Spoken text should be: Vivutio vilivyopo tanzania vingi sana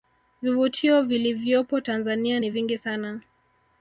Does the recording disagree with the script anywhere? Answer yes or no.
yes